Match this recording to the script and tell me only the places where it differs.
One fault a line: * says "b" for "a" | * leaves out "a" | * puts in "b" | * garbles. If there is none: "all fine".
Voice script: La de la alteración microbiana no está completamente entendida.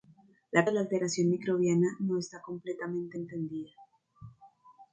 all fine